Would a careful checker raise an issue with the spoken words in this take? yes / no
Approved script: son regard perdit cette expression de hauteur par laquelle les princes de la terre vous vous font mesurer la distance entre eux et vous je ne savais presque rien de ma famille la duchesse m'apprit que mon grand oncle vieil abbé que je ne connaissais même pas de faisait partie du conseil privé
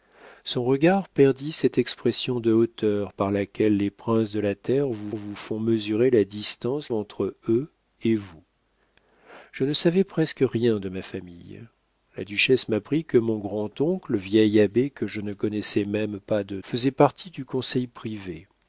no